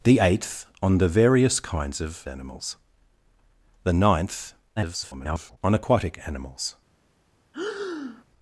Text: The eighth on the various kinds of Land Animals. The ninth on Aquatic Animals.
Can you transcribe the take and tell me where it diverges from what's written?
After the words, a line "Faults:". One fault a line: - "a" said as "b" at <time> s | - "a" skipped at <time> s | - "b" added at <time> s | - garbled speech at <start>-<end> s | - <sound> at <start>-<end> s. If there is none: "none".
The eighth on the various kinds of Animals. The ninth [garbled] on Aquatic Animals.
Faults:
- "Land" skipped at 2.2 s
- garbled speech at 4.8-5.6 s
- breath at 7.5-8.2 s